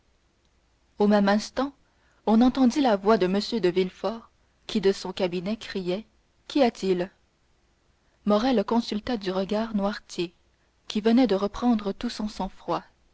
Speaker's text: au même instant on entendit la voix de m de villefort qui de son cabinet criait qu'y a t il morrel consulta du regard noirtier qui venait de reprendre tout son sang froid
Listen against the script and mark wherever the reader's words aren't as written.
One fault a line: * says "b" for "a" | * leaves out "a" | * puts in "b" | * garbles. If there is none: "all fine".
all fine